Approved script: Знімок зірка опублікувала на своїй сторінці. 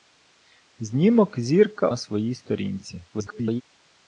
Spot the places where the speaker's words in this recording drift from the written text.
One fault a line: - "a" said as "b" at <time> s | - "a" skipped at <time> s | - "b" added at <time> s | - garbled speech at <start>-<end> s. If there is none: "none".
- "опублікувала" skipped at 1.9 s
- garbled speech at 3.1-3.6 s